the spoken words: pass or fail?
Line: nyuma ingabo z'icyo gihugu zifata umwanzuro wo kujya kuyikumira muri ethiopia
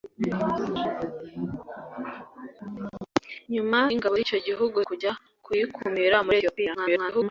fail